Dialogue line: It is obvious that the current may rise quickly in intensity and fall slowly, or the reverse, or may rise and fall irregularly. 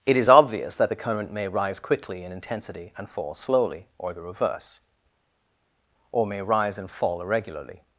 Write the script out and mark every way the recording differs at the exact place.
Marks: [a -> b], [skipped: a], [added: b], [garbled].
It is obvious that the current may rise quickly in intensity and fall slowly, or the reverse, or may rise and fall irregularly.